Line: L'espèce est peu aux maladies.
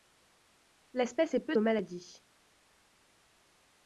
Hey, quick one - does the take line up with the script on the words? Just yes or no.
yes